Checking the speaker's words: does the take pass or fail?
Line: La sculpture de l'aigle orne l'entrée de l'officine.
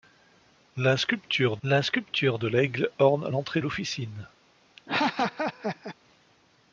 fail